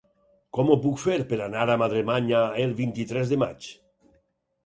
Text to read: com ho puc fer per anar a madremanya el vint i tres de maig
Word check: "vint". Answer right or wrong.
right